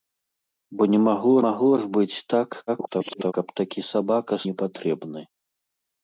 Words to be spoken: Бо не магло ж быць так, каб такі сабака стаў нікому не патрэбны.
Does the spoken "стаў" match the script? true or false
false